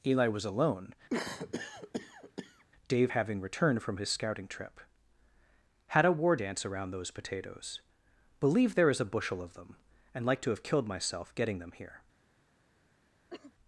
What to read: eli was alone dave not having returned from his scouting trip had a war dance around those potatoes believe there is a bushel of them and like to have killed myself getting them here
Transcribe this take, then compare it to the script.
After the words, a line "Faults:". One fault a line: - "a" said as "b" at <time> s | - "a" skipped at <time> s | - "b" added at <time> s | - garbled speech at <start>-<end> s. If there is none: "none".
eli was alone dave having returned from his scouting trip had a war dance around those potatoes believe there is a bushel of them and like to have killed myself getting them here
Faults:
- "not" skipped at 3.1 s